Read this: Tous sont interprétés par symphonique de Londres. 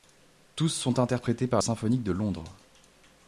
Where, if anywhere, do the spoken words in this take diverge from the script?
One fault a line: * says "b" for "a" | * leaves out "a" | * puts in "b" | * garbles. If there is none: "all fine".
all fine